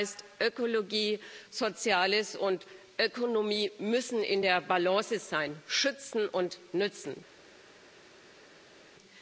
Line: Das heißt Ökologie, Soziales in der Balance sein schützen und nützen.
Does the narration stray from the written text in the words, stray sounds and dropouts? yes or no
yes